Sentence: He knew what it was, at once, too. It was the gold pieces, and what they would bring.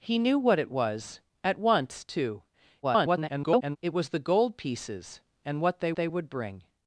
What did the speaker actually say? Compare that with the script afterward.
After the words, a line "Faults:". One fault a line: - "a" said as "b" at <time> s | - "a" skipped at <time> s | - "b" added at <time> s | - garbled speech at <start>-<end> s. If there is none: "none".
He knew what it was, at once, too. [garbled] It was the gold pieces, and what they they would bring.
Faults:
- garbled speech at 2.8-3.8 s
- "they" added at 5.9 s